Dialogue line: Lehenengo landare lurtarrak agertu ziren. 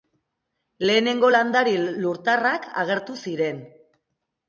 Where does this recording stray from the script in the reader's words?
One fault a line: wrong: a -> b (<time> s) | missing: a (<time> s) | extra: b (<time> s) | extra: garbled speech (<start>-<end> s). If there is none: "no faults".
no faults